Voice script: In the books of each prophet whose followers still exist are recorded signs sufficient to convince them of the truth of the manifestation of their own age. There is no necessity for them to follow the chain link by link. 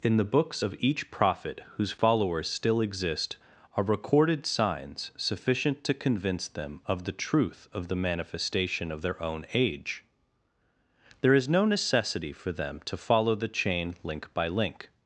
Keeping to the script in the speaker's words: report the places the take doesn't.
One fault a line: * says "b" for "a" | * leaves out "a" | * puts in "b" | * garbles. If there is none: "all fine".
all fine